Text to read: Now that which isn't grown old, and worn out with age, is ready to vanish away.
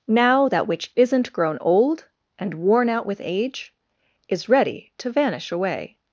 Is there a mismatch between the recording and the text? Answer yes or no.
no